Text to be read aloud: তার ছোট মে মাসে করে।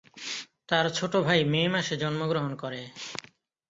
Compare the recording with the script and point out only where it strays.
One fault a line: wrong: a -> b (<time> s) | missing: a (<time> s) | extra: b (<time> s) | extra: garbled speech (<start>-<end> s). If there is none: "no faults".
extra: ভাই (1.3 s)
extra: জন্মগ্রহণ (2.0 s)